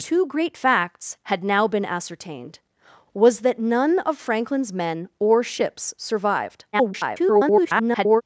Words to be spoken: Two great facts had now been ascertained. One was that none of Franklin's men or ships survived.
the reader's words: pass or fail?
fail